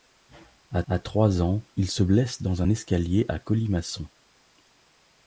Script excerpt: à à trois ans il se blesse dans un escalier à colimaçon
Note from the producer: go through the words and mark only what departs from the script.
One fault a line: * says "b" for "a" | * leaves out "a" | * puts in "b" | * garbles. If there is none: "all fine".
all fine